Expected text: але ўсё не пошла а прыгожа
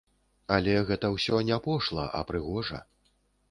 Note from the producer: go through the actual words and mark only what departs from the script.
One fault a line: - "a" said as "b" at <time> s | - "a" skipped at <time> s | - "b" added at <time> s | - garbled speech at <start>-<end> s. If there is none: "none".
- "гэта" added at 0.9 s